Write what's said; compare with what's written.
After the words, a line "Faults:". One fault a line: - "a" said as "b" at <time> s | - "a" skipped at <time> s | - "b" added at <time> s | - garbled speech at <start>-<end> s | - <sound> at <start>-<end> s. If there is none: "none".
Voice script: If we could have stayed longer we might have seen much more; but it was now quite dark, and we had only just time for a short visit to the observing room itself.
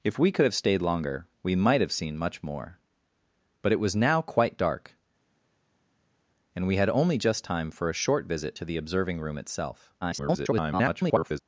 If we could have stayed longer we might have seen much more; but it was now quite dark, and we had only just time for a short visit to the observing room itself. [garbled]
Faults:
- garbled speech at 10.0-11.4 s